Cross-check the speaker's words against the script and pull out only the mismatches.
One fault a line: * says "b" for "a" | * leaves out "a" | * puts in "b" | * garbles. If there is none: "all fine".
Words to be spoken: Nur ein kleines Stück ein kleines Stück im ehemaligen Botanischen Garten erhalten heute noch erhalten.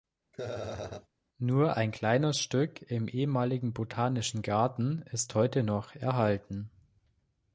* leaves out "ein kleines Stück"
* says "ist" for "erhalten"